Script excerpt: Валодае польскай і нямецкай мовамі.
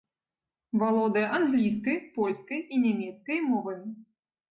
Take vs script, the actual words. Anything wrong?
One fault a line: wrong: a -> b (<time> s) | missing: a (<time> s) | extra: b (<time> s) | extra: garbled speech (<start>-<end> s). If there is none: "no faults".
extra: англійскай (1.4 s)